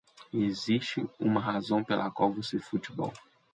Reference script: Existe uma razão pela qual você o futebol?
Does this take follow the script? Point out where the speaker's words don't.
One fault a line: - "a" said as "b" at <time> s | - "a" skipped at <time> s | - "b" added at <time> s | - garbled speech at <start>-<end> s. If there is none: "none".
none